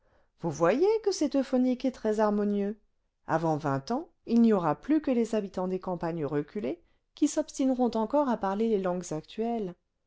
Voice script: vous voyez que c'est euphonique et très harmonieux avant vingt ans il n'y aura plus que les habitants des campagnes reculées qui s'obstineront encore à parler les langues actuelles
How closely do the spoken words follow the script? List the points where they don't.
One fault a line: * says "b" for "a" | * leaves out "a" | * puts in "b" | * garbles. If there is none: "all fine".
all fine